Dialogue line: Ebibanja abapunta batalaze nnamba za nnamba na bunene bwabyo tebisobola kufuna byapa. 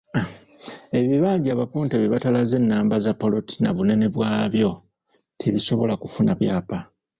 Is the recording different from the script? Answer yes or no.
yes